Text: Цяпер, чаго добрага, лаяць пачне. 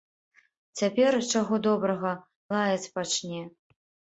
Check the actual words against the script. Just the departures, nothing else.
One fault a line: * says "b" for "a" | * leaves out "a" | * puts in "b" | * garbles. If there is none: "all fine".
all fine